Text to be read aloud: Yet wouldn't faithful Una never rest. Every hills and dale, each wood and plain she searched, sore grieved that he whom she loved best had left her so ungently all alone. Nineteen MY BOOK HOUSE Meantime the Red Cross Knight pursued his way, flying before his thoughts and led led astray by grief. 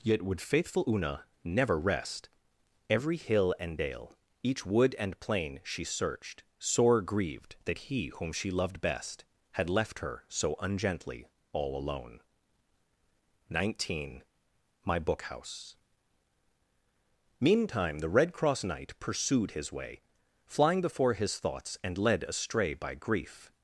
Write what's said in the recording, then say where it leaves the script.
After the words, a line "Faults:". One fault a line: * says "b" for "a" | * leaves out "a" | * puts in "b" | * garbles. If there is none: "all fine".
Yet would faithful Una never rest. Every hill and dale, each wood and plain she searched, sore grieved that he whom she loved best had left her so ungently all alone. Nineteen MY BOOK HOUSE Meantime the Red Cross Knight pursued his way, flying before his thoughts and led astray by grief.
Faults:
* says "would" for "wouldn't"
* says "hill" for "hills"
* leaves out "led"